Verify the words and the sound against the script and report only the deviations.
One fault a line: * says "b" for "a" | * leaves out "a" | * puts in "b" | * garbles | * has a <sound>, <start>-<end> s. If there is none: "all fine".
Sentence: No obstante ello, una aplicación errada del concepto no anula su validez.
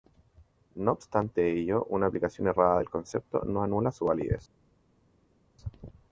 all fine